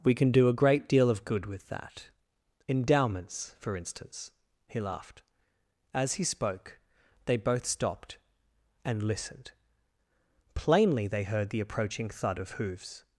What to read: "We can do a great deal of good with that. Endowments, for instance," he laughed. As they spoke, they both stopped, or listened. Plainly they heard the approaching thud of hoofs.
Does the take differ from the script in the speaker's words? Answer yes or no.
yes